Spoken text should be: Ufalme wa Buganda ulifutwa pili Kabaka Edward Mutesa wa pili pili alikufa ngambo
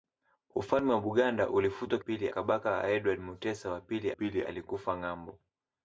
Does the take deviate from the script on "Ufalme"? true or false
false